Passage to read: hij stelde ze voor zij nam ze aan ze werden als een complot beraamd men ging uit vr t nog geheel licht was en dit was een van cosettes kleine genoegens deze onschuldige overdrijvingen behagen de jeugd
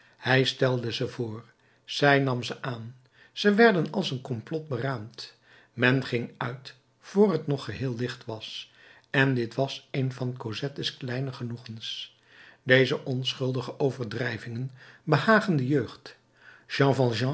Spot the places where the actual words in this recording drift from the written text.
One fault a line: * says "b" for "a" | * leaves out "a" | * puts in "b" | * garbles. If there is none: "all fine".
all fine